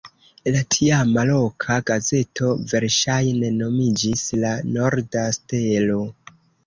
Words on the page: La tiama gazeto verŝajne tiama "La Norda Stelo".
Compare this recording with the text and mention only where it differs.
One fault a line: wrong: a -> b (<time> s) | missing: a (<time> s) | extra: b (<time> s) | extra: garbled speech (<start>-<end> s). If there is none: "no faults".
extra: loka (1.3 s)
wrong: tiama -> nomiĝis (3.6 s)